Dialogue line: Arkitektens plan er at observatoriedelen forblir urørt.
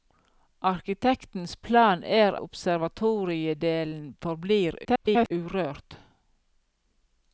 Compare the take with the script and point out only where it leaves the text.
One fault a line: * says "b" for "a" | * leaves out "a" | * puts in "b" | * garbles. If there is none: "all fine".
* leaves out "at"
* garbles